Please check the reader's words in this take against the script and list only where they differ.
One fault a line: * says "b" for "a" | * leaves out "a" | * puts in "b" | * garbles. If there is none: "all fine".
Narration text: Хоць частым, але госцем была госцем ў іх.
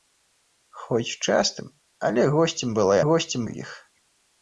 all fine